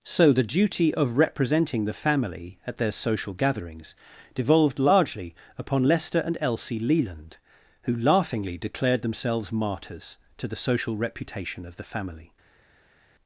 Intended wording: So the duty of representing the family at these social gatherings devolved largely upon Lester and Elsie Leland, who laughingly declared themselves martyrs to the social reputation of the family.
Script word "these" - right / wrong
wrong